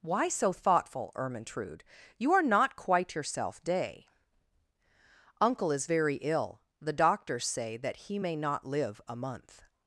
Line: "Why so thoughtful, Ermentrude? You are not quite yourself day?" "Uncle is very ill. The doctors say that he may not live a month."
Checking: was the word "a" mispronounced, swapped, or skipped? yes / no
no